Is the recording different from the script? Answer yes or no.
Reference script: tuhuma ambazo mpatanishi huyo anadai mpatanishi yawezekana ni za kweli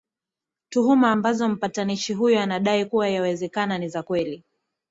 yes